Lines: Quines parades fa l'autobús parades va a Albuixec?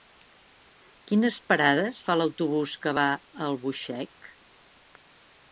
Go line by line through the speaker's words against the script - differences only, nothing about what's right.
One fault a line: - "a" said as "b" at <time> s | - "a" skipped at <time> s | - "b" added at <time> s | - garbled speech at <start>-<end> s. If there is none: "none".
- "parades" said as "que" at 2.9 s